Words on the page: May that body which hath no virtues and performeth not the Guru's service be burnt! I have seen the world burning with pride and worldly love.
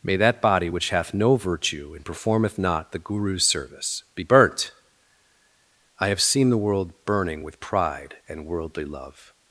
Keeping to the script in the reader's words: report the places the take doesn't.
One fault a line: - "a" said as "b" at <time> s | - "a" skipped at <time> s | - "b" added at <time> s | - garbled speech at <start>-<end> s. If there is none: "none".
- "virtues" said as "virtue" at 1.4 s